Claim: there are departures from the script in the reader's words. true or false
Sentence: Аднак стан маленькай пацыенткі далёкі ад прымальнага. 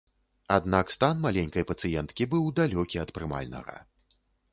true